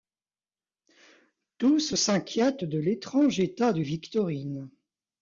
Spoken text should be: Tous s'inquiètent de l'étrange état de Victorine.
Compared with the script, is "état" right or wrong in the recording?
right